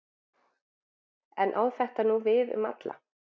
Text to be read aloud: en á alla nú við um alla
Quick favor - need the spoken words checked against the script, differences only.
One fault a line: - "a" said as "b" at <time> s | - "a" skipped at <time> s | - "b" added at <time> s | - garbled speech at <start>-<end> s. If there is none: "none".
- "alla" said as "þetta" at 1.8 s